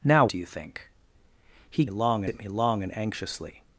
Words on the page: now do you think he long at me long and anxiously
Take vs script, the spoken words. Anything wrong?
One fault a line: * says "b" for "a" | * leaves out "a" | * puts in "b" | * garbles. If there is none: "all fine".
all fine